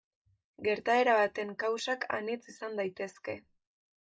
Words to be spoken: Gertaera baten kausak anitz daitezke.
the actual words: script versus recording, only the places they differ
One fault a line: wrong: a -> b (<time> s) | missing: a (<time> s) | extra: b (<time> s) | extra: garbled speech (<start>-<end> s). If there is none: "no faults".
extra: izan (2.5 s)